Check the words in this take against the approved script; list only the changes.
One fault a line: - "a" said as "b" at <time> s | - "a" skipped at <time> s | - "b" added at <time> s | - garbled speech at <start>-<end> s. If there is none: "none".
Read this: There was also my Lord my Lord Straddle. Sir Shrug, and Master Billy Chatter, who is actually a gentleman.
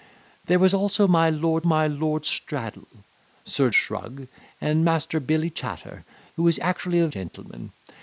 none